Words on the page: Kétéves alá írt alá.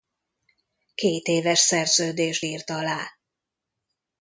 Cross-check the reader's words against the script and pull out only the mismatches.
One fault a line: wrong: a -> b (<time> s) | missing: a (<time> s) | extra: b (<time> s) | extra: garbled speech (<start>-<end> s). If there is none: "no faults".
wrong: alá -> szerződést (1.6 s)